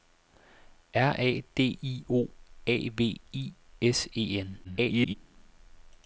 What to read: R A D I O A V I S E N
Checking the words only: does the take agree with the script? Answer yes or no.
no